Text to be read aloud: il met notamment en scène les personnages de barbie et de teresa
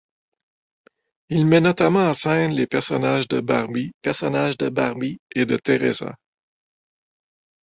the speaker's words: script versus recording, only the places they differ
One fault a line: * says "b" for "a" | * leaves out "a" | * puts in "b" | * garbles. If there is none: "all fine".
* puts in "personnages de barbie"